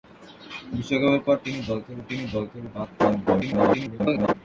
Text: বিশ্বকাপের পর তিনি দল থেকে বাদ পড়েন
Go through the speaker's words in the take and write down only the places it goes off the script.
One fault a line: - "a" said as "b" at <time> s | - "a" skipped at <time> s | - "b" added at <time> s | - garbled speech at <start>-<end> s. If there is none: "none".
- "তিনি দল থেকে" added at 2.1 s
- garbled speech at 3.3-4.3 s